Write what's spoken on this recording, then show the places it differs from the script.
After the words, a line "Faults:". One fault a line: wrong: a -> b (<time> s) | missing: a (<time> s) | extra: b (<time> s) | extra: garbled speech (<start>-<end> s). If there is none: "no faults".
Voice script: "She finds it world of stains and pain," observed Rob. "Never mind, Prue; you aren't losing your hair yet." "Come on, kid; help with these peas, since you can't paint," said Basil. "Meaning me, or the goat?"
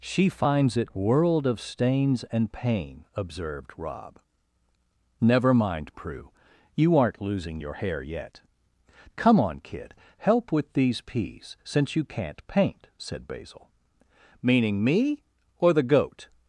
"She finds it world of stains and pain," observed Rob. "Never mind, Prue; you aren't losing your hair yet." "Come on, kid; help with these peas, since you can't paint," said Basil. "Meaning me, or the goat?"
Faults:
no faults